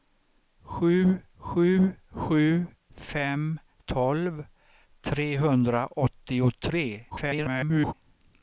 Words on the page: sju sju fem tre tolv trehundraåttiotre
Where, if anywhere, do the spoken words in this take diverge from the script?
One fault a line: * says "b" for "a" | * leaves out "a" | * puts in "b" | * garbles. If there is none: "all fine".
* puts in "sju"
* leaves out "tre"
* garbles